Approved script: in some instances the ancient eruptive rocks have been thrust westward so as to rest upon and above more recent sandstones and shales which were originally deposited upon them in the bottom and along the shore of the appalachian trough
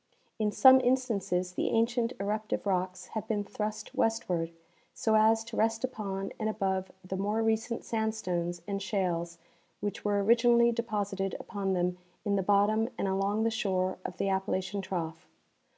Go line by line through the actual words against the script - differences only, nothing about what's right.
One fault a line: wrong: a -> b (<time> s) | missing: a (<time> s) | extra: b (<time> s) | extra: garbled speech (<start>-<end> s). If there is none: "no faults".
extra: the (7.0 s)